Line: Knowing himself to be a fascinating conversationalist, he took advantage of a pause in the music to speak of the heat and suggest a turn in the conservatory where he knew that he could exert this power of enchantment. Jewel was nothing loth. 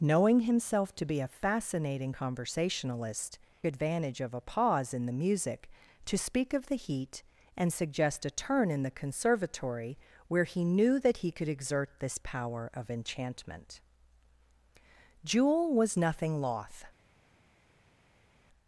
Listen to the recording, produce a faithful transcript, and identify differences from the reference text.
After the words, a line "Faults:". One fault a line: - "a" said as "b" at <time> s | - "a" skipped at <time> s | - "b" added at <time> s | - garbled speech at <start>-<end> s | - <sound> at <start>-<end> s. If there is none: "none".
Knowing himself to be a fascinating conversationalist, advantage of a pause in the music to speak of the heat and suggest a turn in the conservatory where he knew that he could exert this power of enchantment. Jewel was nothing loth.
Faults:
- "he took" skipped at 3.4 s